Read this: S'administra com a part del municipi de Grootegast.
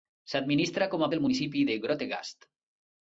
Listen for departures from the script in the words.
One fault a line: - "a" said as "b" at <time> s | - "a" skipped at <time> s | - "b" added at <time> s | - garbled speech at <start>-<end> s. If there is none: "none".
- "part" skipped at 1.1 s